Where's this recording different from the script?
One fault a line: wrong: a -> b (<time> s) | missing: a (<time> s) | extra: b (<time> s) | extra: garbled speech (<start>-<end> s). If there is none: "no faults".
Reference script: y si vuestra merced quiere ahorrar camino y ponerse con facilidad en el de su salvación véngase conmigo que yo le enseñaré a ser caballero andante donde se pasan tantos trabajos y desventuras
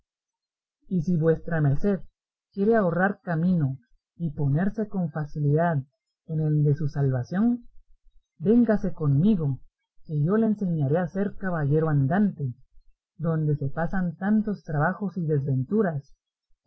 no faults